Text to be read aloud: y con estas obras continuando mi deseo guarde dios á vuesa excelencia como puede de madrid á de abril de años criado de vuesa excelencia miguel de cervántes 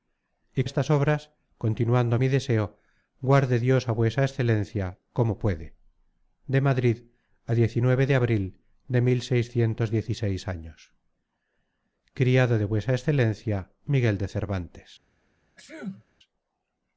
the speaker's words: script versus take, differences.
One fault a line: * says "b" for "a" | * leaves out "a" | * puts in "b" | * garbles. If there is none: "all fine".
* leaves out "con"